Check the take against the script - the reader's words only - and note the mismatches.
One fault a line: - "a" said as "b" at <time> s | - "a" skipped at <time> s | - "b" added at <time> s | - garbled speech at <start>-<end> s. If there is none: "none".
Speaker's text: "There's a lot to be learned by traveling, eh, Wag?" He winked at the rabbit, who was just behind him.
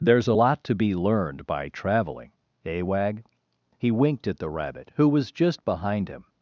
none